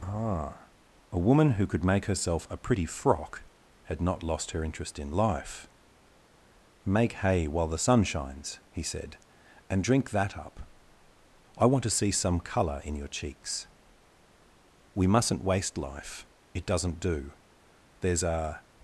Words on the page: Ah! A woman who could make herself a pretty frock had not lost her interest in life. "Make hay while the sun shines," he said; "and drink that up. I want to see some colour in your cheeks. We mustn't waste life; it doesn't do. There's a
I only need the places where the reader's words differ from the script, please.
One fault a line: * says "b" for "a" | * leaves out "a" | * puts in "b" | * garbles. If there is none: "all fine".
all fine